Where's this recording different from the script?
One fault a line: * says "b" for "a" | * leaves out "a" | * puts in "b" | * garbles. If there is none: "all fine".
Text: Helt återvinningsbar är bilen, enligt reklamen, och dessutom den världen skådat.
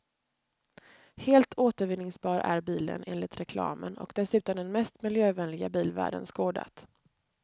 * puts in "mest miljövänliga bil"